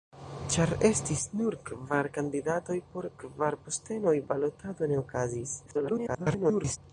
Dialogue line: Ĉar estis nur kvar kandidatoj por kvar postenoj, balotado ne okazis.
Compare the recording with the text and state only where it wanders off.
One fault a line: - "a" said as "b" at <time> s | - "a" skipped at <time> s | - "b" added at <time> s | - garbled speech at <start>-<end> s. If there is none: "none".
- garbled speech at 5.7-6.8 s